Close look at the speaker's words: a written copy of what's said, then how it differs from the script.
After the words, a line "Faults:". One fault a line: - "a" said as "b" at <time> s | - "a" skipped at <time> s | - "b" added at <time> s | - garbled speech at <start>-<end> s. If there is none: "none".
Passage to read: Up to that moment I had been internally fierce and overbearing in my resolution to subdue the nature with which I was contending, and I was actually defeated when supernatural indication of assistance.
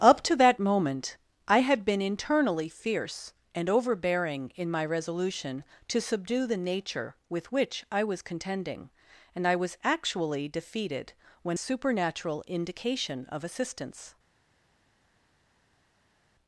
Up to that moment I had been internally fierce and overbearing in my resolution to subdue the nature with which I was contending, and I was actually defeated when supernatural indication of assistance.
Faults:
none